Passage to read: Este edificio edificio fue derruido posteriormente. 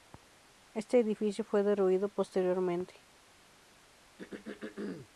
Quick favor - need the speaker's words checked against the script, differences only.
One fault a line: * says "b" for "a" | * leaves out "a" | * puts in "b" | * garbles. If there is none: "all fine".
* leaves out "edificio"